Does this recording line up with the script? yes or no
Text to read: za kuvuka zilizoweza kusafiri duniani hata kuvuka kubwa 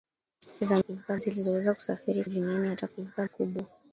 yes